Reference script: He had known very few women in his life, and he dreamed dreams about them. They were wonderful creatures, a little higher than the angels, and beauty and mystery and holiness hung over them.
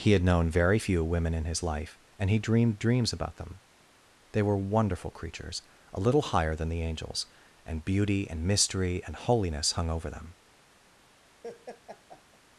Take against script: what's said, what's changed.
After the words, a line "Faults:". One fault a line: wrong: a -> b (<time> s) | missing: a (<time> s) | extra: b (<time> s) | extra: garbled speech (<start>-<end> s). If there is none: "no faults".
He had known very few women in his life, and he dreamed dreams about them. They were wonderful creatures, a little higher than the angels, and beauty and mystery and holiness hung over them.
Faults:
no faults